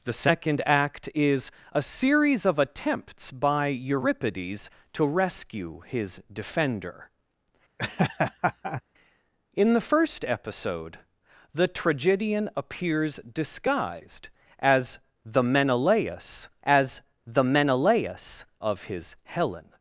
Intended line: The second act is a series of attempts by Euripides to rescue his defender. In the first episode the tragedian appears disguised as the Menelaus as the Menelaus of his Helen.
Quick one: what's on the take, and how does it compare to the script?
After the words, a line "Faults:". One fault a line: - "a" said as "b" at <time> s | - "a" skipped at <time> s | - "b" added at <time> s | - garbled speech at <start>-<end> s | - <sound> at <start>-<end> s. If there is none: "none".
The second act is a series of attempts by Euripides to rescue his defender. In the first episode the tragedian appears disguised as the Menelaus as the Menelaus of his Helen.
Faults:
- laugh at 7.8-8.8 s